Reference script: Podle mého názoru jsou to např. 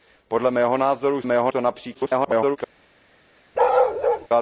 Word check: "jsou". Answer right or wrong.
wrong